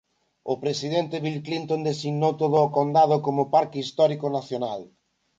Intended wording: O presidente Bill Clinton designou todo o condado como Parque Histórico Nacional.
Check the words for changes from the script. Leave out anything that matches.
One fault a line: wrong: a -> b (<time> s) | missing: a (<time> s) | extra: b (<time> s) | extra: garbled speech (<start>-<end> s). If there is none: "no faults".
no faults